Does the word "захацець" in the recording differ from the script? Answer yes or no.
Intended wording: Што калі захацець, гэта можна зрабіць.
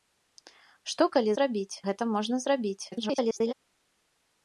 yes